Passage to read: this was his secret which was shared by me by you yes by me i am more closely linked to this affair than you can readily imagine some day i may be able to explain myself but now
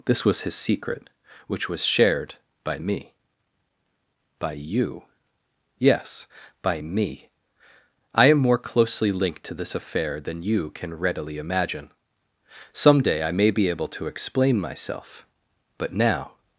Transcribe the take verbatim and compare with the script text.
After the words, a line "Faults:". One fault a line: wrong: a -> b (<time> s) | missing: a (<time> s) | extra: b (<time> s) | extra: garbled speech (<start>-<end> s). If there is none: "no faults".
this was his secret which was shared by me by you yes by me i am more closely linked to this affair than you can readily imagine some day i may be able to explain myself but now
Faults:
no faults